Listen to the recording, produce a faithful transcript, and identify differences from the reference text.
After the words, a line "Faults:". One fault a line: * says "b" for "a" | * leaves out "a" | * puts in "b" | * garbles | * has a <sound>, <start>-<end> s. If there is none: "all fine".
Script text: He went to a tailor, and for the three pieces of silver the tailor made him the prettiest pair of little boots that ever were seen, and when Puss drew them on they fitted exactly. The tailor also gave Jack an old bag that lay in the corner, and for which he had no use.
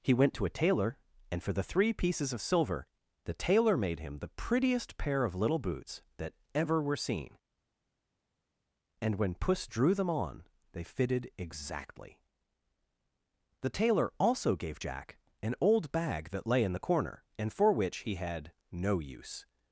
He went to a tailor, and for the three pieces of silver the tailor made him the prettiest pair of little boots that ever were seen, and when Puss drew them on they fitted exactly. The tailor also gave Jack an old bag that lay in the corner, and for which he had no use.
Faults:
all fine